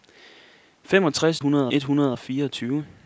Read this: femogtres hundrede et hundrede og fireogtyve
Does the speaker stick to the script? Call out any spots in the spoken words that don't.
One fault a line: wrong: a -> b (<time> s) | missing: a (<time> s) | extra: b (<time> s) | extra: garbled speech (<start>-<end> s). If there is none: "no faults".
no faults